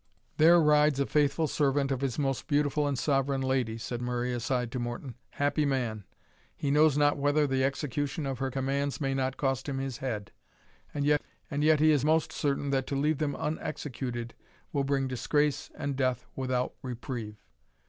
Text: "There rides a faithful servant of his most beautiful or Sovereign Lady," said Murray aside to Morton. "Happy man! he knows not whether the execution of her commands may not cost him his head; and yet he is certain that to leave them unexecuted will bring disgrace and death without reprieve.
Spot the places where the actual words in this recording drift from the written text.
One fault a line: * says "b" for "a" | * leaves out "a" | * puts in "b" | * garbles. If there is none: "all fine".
* says "and" for "or"
* puts in "most"